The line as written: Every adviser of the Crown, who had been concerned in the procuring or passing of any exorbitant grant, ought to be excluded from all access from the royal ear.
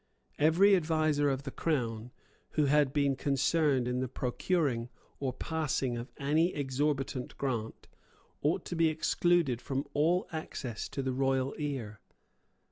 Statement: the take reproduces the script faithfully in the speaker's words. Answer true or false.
false